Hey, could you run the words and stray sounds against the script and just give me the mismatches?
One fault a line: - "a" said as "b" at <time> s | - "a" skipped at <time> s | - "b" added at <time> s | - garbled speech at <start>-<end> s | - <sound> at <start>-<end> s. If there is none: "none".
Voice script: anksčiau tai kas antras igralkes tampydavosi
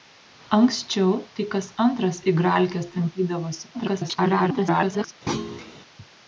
- garbled speech at 3.7-5.1 s
- thud at 5.3-5.7 s